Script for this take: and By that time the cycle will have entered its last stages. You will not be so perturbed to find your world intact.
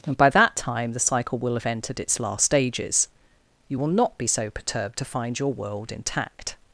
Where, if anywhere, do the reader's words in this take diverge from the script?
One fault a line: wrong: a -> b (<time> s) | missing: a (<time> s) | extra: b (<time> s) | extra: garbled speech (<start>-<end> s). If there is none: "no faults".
no faults